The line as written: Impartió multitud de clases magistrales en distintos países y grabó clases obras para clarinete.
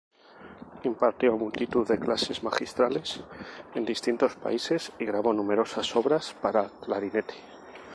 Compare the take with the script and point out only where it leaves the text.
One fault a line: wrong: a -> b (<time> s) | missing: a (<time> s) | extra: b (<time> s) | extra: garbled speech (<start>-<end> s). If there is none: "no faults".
wrong: clases -> numerosas (5.3 s)